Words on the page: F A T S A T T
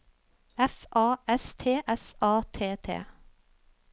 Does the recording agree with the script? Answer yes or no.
no